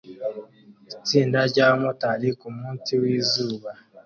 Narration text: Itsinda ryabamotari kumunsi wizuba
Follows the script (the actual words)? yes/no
yes